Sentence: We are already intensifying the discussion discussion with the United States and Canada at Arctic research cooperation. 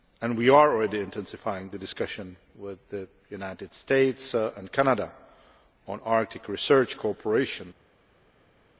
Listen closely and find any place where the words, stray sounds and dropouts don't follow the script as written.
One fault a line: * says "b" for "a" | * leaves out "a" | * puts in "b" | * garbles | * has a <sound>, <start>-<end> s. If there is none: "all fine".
* leaves out "discussion"
* says "on" for "at"